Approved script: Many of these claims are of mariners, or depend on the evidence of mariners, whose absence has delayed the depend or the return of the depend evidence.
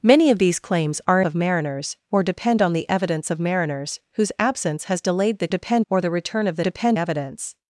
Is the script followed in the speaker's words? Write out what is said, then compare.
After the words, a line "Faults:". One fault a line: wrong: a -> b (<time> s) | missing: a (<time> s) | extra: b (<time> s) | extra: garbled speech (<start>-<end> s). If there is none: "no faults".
Many of these claims are of mariners, or depend on the evidence of mariners, whose absence has delayed the depend or the return of the depend evidence.
Faults:
no faults